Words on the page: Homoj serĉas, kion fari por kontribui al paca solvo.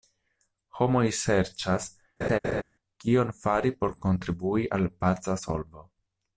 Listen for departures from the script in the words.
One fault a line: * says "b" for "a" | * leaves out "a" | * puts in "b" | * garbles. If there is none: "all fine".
all fine